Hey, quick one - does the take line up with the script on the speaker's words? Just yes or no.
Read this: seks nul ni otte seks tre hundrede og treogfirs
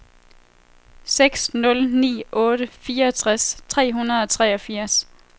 no